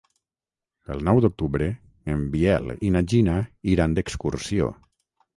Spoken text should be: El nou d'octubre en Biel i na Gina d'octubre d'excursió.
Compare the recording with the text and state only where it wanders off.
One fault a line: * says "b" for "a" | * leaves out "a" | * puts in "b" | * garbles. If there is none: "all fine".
* says "iran" for "d'octubre"